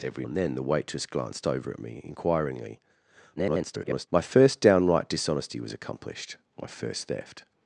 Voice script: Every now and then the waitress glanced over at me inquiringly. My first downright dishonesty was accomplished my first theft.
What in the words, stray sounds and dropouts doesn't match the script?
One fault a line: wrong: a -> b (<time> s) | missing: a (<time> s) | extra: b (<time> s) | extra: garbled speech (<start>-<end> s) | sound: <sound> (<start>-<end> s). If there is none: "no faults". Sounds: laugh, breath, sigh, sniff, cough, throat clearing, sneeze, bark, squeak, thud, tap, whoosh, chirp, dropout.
missing: now (0.2 s)
extra: garbled speech (3.4-4.1 s)